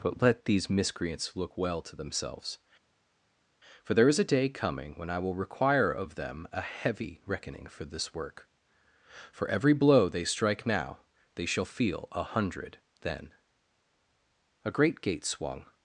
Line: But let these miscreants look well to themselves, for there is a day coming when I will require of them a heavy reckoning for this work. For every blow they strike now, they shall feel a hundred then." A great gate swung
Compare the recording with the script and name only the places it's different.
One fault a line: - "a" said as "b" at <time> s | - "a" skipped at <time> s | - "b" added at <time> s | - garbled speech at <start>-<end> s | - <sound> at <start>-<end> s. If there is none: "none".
none